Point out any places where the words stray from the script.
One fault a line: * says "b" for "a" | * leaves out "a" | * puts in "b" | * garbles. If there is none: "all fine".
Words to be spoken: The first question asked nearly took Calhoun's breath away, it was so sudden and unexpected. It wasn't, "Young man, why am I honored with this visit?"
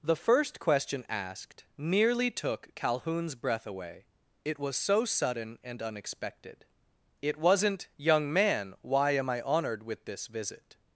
all fine